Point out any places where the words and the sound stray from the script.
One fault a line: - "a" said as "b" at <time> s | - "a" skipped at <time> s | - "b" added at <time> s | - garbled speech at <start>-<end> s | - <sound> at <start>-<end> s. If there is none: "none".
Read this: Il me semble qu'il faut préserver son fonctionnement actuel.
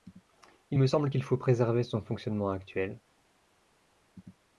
none